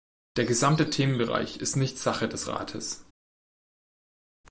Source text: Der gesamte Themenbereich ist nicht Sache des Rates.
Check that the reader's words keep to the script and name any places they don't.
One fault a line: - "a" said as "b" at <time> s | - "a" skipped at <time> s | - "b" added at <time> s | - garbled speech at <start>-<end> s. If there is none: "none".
none